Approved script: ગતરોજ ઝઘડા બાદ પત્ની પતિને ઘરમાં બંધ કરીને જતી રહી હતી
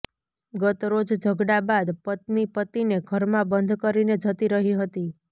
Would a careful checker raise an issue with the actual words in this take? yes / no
no